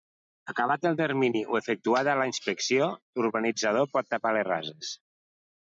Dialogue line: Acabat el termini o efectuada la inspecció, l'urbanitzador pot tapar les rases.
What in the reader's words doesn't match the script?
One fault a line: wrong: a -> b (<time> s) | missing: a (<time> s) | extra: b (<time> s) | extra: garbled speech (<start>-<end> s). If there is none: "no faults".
no faults